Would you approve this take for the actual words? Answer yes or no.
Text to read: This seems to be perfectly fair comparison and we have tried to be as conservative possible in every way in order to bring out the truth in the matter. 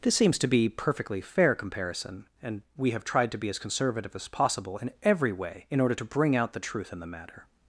no